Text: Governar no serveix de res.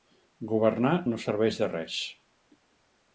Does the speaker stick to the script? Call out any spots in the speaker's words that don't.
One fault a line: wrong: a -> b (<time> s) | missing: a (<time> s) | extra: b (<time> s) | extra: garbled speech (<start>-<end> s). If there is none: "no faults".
no faults